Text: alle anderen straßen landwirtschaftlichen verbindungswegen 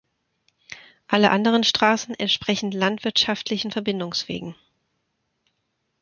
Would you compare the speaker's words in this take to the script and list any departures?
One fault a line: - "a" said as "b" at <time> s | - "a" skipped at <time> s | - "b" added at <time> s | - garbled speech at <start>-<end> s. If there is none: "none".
- "entsprechen" added at 2.1 s